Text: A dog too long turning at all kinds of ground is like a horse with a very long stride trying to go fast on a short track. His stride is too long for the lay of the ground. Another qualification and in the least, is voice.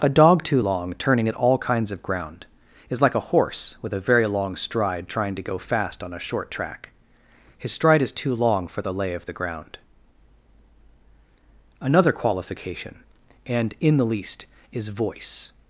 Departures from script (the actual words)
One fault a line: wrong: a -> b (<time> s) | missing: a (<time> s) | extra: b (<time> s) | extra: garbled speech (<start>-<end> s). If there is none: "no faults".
no faults